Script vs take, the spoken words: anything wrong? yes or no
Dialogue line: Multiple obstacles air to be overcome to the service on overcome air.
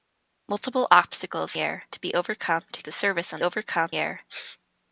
no